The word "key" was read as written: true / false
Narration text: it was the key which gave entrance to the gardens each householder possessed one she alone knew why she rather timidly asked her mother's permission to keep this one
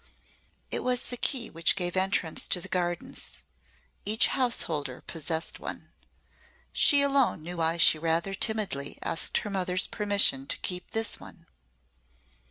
true